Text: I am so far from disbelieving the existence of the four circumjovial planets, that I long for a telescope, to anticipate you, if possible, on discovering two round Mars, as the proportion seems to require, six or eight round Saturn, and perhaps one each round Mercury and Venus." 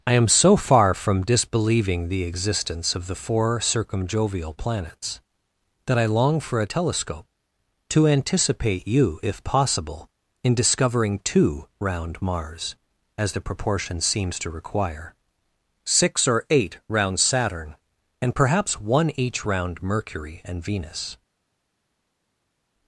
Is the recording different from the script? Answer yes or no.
yes